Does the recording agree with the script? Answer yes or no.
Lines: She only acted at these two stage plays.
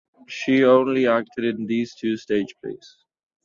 no